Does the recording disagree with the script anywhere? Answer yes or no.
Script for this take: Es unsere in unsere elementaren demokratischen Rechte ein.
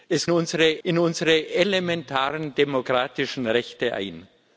no